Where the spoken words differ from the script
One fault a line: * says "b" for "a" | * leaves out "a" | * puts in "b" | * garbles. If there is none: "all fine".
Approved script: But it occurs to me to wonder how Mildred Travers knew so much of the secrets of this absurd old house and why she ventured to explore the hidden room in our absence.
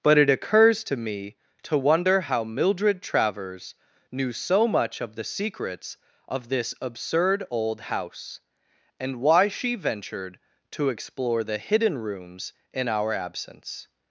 * says "rooms" for "room"